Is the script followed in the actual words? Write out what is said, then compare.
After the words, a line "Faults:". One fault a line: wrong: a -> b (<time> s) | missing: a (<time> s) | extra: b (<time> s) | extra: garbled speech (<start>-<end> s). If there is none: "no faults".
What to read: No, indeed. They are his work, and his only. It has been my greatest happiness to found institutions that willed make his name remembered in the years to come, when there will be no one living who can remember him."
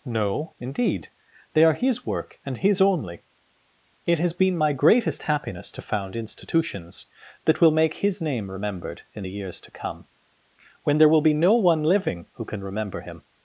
No, indeed. They are his work, and his only. It has been my greatest happiness to found institutions that will make his name remembered in the years to come, when there will be no one living who can remember him."
Faults:
wrong: willed -> will (7.6 s)